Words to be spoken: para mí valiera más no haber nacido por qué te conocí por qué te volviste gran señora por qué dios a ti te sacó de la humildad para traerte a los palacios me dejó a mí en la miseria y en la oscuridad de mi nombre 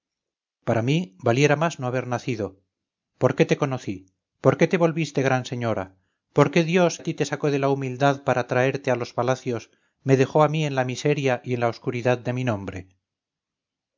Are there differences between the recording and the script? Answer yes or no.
no